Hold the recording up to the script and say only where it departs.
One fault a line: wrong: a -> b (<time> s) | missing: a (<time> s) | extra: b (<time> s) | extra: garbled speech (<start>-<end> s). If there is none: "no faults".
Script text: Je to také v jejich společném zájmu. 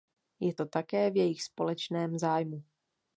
no faults